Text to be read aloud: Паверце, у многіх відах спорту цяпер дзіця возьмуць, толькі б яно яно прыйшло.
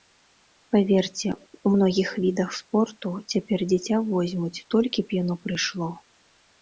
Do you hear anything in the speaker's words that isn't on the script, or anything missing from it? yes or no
yes